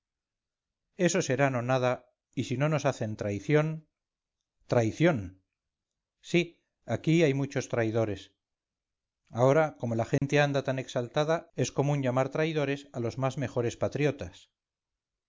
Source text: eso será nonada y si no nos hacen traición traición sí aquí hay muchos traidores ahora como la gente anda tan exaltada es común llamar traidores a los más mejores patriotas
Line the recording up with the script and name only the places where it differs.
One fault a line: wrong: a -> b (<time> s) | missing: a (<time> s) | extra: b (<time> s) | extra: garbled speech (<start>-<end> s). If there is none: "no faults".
no faults